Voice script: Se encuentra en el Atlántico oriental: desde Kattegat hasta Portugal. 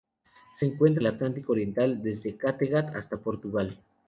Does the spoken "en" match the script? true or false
false